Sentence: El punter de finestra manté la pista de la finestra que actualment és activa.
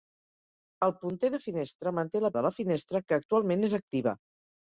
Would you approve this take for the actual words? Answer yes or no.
no